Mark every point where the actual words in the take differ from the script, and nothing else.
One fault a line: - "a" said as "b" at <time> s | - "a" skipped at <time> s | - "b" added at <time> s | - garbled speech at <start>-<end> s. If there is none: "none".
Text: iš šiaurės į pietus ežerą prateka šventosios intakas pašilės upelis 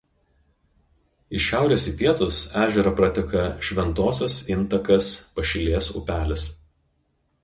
none